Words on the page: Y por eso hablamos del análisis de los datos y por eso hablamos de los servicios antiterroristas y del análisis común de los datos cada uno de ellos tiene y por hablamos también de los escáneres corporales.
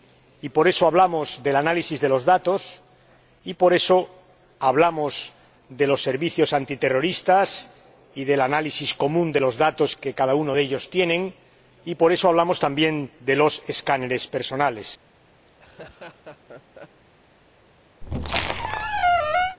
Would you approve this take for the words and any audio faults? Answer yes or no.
no